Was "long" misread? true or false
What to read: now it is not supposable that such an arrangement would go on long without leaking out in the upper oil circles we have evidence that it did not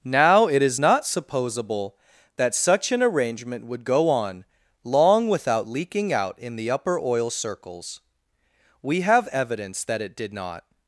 false